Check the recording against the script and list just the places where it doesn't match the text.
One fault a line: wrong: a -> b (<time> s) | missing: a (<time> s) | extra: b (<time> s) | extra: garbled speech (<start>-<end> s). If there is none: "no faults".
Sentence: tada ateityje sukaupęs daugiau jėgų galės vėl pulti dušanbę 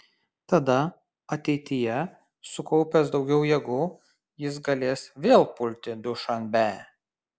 extra: jis (4.4 s)